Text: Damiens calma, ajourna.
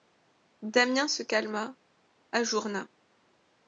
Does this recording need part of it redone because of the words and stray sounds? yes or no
yes